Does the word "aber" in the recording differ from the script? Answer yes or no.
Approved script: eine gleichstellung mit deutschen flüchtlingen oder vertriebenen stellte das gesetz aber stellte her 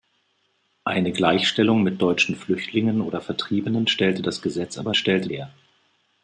no